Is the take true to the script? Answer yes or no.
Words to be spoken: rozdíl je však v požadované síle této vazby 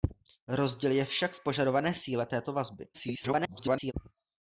no